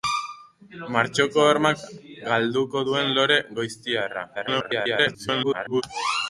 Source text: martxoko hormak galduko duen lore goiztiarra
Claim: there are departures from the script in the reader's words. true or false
true